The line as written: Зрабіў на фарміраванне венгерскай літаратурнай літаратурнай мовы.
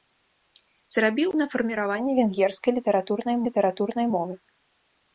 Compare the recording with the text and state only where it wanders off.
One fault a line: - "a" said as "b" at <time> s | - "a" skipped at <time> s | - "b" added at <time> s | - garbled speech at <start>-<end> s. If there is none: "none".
none